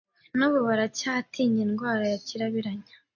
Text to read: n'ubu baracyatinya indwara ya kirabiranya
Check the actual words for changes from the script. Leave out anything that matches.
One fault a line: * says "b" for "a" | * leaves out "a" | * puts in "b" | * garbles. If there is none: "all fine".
all fine